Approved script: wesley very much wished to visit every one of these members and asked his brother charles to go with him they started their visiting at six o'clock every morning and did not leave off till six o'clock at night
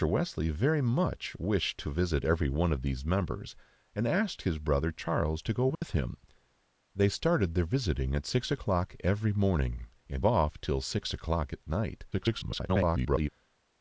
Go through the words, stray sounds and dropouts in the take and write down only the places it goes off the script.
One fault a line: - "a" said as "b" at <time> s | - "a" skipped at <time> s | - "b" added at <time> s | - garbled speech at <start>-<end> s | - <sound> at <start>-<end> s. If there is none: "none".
- dropout at 5.7-5.8 s
- "did not leave" skipped at 10.2 s
- garbled speech at 12.1-13.3 s